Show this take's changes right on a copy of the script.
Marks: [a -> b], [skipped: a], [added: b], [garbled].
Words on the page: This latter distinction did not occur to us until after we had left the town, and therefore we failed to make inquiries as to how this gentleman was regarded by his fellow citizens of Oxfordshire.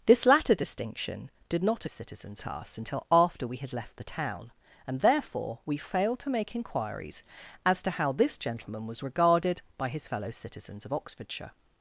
This latter distinction did not [occur -> citizens] to us until after we had left the town, and therefore we failed to make inquiries as to how this gentleman was regarded by his fellow citizens of Oxfordshire.